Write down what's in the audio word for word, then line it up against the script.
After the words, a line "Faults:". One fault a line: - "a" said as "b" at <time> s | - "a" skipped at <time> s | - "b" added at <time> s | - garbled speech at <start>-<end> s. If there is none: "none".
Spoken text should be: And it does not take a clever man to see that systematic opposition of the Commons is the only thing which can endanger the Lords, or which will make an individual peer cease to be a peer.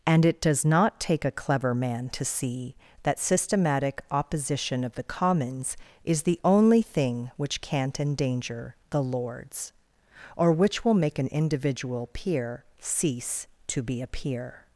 And it does not take a clever man to see that systematic opposition of the Commons is the only thing which can't endanger the Lords, or which will make an individual peer cease to be a peer.
Faults:
- "can" said as "can't" at 7.6 s